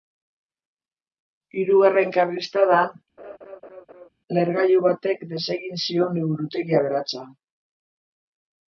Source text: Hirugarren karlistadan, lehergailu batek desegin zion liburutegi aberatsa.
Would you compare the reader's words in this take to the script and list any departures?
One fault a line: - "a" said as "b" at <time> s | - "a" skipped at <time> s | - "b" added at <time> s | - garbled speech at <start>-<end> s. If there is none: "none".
none